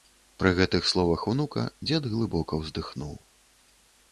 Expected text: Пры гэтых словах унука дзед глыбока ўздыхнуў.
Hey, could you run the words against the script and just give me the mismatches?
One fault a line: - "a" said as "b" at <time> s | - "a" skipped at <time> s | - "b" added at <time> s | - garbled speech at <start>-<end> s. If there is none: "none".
none